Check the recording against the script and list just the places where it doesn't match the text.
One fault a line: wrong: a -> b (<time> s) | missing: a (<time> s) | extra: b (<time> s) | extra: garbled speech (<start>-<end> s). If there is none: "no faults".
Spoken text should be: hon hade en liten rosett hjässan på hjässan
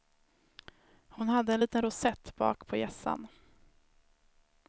wrong: hjässan -> bak (2.3 s)